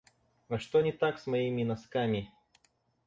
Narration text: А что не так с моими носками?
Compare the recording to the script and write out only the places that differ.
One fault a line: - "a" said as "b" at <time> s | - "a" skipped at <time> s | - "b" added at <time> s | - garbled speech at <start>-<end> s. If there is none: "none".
none